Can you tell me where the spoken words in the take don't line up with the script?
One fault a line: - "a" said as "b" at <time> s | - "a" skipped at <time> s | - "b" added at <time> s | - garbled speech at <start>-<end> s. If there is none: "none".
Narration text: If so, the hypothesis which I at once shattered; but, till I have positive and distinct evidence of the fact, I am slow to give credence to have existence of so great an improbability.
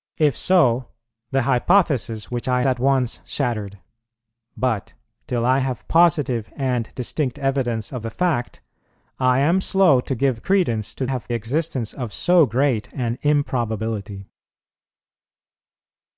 none